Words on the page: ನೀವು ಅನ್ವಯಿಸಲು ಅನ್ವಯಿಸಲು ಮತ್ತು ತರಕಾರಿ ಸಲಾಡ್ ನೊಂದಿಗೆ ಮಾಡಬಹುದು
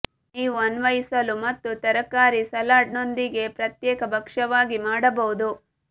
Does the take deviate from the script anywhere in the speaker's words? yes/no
yes